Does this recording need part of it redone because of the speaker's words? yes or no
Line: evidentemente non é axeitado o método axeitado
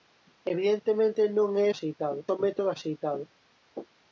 no